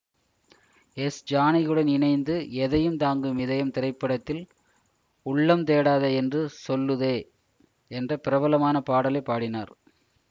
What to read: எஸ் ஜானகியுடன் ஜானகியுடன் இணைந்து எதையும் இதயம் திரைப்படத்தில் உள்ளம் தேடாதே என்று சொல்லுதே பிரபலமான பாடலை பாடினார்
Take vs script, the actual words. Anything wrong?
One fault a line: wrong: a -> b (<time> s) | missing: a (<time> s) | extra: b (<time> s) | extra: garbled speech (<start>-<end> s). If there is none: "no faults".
missing: ஜானகியுடன் (1.9 s)
extra: தாங்கும் (3.0 s)
extra: என்ற (7.9 s)